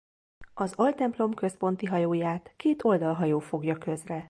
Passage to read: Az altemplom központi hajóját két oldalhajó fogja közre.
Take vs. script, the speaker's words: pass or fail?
pass